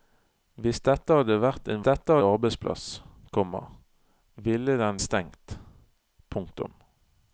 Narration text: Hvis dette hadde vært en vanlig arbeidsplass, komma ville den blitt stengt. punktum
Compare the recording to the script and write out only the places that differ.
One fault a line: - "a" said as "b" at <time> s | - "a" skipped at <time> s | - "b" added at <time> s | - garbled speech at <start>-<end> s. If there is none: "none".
- "vanlig" said as "dette" at 1.8 s
- "blitt" skipped at 5.0 s